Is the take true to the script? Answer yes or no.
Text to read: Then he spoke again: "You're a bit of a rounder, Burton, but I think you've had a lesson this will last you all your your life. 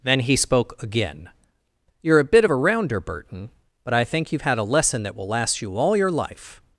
no